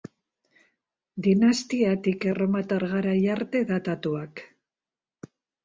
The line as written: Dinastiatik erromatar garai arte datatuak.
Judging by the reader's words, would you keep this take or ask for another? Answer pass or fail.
pass